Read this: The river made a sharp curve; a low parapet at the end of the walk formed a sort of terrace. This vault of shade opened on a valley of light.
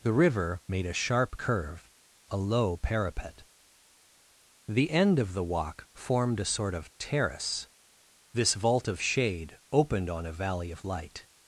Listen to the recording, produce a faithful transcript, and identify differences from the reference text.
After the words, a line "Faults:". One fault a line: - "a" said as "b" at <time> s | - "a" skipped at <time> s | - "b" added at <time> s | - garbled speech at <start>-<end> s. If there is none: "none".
The river made a sharp curve; a low parapet the end of the walk formed a sort of terrace. This vault of shade opened on a valley of light.
Faults:
- "at" skipped at 3.4 s